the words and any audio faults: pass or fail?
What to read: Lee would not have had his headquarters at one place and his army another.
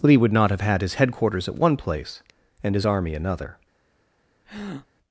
fail